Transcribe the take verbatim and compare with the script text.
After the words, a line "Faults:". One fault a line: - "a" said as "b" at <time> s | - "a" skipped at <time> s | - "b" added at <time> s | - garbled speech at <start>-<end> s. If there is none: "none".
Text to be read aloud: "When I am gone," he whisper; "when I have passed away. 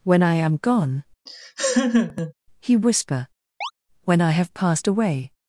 "When I am gone," he whisper; "when I have passed away.
Faults:
none